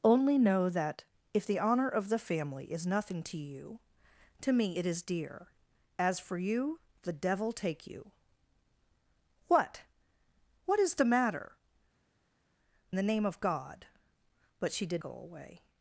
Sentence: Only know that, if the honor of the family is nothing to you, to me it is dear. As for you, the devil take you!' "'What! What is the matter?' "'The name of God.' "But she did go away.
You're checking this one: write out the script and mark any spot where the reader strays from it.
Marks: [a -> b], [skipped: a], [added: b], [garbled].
Only know that, if the honor of the family is nothing to you, to me it is dear. As for you, the devil take you!' "'What! What is the matter?' "'The name of God.' "But she did go away.